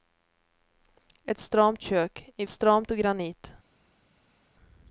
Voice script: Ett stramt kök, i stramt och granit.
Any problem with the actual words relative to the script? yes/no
no